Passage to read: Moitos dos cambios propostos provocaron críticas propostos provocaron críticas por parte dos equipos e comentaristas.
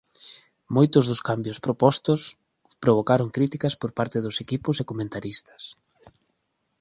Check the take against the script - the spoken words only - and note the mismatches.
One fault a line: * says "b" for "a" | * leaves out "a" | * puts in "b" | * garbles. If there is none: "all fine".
* leaves out "propostos provocaron críticas"